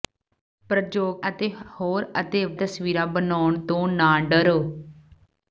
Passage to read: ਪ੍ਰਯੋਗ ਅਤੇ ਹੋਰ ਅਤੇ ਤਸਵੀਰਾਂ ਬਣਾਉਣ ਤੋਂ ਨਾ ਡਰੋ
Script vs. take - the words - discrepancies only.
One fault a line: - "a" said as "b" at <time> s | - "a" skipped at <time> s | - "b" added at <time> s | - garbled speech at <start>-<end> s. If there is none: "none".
none